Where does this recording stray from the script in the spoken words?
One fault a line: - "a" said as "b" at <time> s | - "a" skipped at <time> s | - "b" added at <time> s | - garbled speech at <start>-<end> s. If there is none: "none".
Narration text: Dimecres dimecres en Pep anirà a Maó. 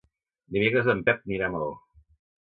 - "dimecres" skipped at 0.9 s